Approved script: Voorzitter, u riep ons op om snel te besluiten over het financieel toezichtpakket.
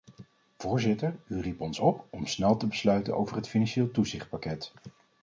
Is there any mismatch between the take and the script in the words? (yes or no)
no